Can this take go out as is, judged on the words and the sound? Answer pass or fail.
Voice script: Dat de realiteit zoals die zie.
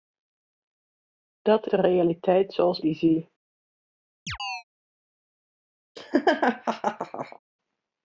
fail